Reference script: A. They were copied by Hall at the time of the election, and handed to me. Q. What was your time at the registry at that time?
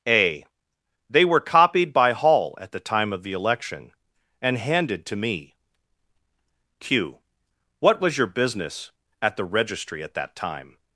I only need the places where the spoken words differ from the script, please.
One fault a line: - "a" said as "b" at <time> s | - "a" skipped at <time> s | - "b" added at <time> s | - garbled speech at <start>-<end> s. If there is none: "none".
- "time" said as "business" at 8.3 s